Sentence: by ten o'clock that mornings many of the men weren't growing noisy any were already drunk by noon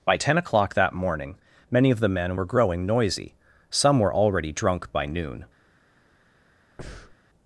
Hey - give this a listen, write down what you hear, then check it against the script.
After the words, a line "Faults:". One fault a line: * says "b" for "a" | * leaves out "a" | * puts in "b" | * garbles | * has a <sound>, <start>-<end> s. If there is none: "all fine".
by ten o'clock that morning many of the men were growing noisy some were already drunk by noon
Faults:
* says "morning" for "mornings"
* says "were" for "weren't"
* says "some" for "any"
* has a breath, 6.8-7.2 s